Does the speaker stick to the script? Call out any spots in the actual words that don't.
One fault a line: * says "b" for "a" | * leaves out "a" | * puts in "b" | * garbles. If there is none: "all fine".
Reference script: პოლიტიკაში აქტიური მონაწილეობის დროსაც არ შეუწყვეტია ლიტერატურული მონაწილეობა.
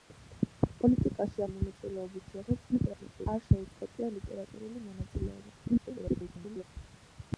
* leaves out "აქტიური"
* garbles
* garbles